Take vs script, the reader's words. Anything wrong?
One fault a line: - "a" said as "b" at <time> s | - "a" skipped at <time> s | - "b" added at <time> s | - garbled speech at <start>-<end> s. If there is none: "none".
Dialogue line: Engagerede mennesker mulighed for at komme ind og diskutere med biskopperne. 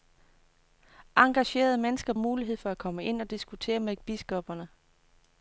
none